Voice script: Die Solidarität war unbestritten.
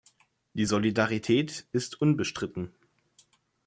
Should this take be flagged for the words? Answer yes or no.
yes